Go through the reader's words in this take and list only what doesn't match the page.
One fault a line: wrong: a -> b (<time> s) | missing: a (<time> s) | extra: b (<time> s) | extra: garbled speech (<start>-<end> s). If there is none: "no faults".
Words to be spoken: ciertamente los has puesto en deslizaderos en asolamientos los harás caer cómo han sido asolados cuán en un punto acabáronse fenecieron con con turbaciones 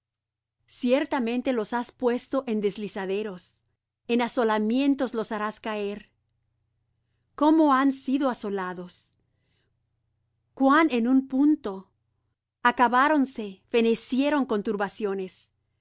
missing: con (14.6 s)